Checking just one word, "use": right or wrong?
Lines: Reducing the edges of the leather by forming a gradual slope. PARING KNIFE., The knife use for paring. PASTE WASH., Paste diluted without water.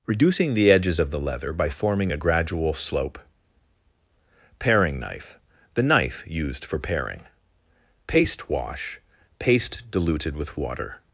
wrong